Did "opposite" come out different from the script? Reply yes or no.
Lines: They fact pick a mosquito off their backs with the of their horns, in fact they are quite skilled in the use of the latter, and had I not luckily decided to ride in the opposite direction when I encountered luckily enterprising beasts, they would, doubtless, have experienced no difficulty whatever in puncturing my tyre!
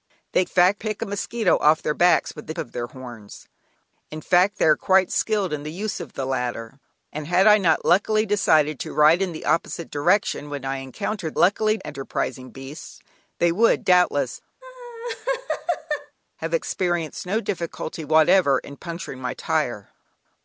no